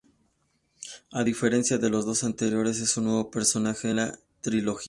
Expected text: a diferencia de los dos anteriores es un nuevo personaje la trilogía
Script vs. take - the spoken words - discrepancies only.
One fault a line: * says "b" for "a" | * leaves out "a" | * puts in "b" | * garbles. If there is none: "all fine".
all fine